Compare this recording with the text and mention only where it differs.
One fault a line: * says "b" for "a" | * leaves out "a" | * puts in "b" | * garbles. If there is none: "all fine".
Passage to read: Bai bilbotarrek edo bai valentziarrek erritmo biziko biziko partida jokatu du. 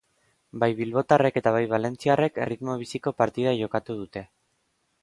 * says "eta" for "edo"
* leaves out "biziko"
* says "dute" for "du"